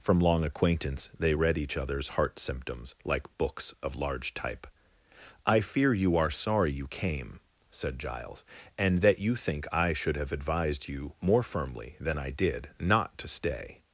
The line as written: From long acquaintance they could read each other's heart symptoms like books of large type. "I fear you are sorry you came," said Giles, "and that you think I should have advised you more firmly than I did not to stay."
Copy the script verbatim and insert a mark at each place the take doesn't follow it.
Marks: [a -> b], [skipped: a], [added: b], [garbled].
From long acquaintance they [skipped: could] read each other's heart symptoms like books of large type. "I fear you are sorry you came," said Giles, "and that you think I should have advised you more firmly than I did not to stay."